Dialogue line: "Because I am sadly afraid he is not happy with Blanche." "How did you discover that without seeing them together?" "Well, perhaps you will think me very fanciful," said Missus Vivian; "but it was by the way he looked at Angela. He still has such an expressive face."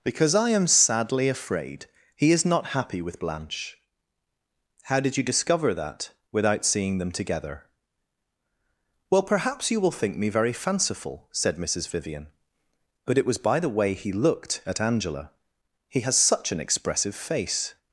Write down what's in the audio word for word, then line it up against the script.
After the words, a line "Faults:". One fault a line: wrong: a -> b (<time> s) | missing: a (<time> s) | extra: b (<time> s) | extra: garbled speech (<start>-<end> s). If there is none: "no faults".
"Because I am sadly afraid he is not happy with Blanche." "How did you discover that without seeing them together?" "Well, perhaps you will think me very fanciful," said Missus Vivian; "but it was by the way he looked at Angela. He has such an expressive face."
Faults:
missing: still (16.0 s)